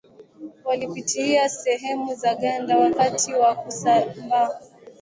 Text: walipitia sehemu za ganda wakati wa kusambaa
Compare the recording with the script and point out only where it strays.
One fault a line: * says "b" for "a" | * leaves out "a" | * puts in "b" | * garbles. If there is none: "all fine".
all fine